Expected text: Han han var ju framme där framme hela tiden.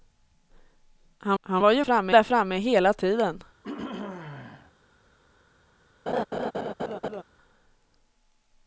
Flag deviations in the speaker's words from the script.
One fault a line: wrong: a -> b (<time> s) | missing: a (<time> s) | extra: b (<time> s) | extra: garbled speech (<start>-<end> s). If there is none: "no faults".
no faults